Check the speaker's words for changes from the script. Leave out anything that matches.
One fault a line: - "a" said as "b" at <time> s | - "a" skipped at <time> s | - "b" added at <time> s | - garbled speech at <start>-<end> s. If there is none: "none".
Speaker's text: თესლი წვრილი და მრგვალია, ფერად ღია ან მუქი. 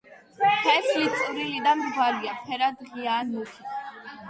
none